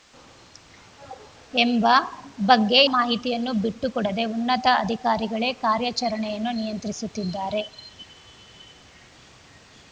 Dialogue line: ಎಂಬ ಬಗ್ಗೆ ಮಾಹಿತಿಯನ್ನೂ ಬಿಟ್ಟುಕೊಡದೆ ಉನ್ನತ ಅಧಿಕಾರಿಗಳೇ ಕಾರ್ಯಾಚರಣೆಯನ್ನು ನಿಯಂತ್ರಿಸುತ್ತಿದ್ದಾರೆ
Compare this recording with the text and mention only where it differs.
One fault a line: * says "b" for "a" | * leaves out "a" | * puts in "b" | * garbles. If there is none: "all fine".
all fine